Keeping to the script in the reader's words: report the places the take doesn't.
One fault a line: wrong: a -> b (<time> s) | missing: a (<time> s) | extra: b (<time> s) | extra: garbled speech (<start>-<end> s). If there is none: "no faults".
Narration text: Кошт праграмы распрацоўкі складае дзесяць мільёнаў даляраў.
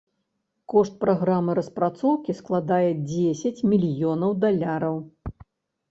no faults